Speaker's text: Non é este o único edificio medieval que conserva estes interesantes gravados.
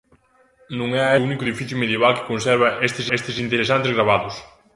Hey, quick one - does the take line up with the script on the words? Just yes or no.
no